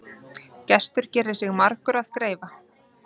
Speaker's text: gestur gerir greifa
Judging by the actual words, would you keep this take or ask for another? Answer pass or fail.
fail